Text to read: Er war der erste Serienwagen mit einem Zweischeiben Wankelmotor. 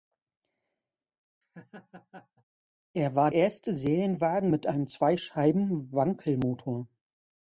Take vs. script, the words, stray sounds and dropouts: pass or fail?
fail